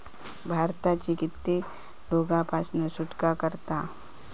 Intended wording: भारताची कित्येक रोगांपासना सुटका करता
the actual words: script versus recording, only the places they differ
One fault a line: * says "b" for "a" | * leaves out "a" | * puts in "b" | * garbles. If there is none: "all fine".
all fine